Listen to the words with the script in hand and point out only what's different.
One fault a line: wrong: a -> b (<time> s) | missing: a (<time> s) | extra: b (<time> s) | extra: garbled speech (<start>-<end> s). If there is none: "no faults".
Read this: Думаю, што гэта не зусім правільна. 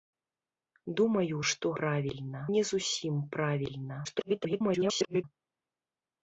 wrong: гэта -> правільна (1.8 s)
extra: garbled speech (4.0-5.2 s)